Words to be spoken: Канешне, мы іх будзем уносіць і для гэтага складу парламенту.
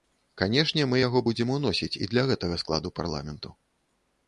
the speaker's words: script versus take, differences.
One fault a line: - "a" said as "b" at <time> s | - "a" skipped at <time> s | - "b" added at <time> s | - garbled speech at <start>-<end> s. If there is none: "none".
- "іх" said as "яго" at 1.0 s